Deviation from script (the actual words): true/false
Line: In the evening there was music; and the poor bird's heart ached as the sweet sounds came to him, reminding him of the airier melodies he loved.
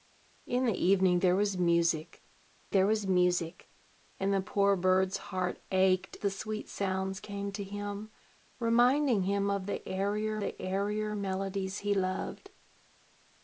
true